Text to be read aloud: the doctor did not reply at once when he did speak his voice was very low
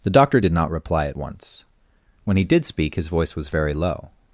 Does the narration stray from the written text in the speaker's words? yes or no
no